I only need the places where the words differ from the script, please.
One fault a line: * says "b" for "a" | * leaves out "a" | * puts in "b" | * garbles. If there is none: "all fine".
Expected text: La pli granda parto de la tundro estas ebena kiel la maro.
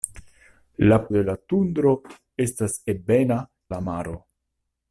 * leaves out "pli granda parto"
* leaves out "kiel"